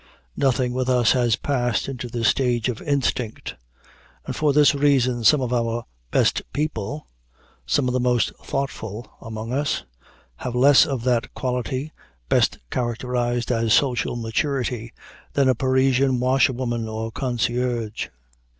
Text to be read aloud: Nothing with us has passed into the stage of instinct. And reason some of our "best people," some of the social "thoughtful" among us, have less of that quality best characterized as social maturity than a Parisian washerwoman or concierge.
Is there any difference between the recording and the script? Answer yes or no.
yes